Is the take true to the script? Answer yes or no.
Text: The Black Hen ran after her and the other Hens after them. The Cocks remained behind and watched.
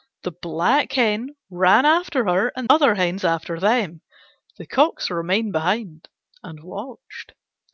no